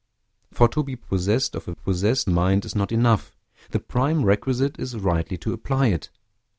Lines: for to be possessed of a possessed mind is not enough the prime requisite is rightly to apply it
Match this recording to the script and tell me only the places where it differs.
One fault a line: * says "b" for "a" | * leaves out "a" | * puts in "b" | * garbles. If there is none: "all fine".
all fine